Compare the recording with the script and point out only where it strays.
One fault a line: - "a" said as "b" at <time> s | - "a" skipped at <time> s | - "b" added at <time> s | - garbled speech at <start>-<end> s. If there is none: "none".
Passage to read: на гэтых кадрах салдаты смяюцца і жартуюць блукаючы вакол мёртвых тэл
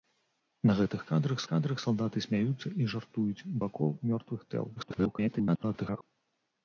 - "кадрах" added at 1.5 s
- "блукаючы" skipped at 3.5 s
- garbled speech at 4.8-6.0 s